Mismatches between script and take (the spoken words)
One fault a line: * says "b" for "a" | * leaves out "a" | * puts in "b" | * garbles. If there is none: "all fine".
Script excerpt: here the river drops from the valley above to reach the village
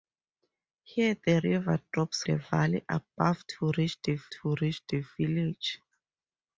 * leaves out "from"
* puts in "to reach the"